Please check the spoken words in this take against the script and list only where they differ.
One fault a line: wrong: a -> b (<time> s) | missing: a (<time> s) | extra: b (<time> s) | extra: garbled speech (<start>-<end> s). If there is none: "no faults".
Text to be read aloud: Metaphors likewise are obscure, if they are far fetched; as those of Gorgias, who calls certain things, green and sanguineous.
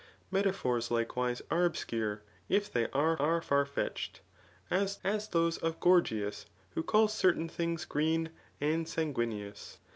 extra: are (3.1 s)
extra: as (5.0 s)